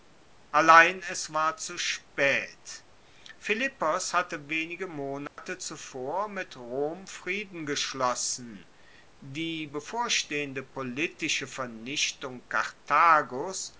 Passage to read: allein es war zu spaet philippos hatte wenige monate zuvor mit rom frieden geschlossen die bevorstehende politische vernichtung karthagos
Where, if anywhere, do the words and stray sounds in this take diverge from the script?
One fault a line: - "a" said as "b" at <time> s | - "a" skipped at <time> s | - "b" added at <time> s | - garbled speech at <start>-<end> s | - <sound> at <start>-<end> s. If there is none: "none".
- dropout at 5.3-5.4 s